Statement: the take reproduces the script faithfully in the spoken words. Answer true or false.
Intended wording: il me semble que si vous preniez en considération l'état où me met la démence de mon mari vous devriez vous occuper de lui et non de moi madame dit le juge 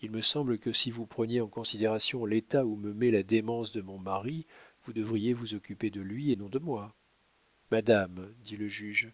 true